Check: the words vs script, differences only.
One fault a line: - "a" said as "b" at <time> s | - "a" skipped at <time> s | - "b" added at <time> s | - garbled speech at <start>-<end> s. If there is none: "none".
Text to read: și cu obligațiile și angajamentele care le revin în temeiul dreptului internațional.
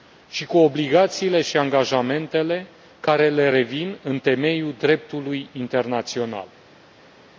none